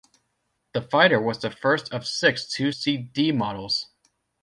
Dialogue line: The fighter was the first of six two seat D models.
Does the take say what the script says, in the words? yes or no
yes